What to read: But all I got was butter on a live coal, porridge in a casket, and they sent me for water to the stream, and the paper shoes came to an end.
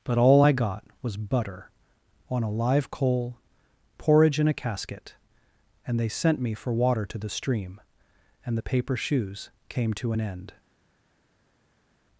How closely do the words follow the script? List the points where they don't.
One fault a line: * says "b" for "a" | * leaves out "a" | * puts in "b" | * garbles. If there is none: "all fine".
all fine